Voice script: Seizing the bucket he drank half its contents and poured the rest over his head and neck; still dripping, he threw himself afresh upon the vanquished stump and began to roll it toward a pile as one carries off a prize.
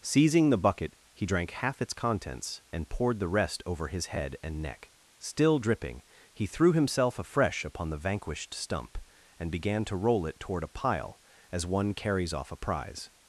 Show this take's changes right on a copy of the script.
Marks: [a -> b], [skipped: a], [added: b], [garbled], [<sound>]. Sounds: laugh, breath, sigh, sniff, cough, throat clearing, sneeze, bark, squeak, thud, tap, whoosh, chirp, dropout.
Seizing the bucket he drank half its contents and poured the rest over his head and neck; still dripping, he threw himself afresh upon the vanquished stump and began to roll it toward a pile as one carries off a prize.